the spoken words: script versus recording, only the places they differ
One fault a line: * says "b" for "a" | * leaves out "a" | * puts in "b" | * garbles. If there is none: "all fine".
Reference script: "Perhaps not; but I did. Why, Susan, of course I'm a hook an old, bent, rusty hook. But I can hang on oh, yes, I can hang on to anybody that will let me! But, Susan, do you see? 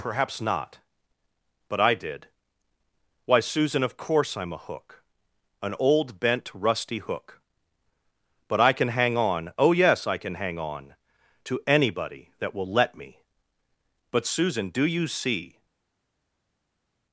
all fine